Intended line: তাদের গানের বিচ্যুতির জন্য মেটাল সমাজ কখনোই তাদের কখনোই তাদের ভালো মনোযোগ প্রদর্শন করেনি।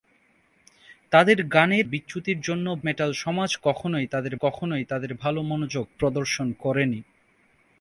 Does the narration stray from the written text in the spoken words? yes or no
no